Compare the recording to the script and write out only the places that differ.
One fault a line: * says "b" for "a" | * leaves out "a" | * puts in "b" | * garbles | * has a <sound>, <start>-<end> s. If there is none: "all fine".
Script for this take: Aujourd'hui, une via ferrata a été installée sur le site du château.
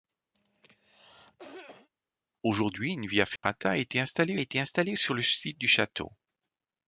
* has a cough, 0.3-1.9 s
* has a dropout, 3.4-3.4 s
* puts in "été installée"